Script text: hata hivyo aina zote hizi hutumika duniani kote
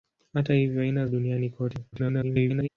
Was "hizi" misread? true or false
true